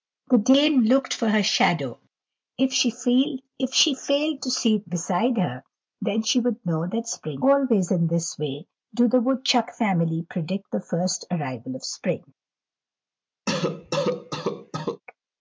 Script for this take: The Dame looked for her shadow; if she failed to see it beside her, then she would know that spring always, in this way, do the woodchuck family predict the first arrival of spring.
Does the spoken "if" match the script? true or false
true